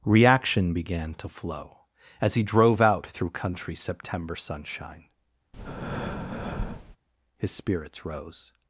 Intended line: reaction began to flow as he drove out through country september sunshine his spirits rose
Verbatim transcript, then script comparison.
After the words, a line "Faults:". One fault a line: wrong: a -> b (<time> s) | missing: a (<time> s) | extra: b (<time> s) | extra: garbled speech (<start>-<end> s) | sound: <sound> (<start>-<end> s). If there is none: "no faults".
reaction began to flow as he drove out through country september sunshine his spirits rose
Faults:
sound: breath (5.5-7.0 s)